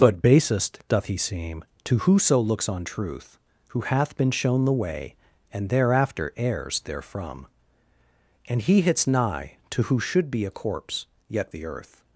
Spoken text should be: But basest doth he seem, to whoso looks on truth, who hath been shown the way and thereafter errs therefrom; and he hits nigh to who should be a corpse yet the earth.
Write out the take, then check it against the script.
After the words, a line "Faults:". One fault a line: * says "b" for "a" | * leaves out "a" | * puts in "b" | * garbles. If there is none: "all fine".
But basest doth he seem, to whoso looks on truth, who hath been shown the way and thereafter errs therefrom; and he hits nigh to who should be a corpse yet the earth.
Faults:
all fine